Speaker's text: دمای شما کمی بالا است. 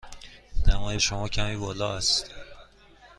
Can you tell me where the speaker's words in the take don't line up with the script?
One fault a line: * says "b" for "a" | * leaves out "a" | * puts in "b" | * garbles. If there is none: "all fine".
all fine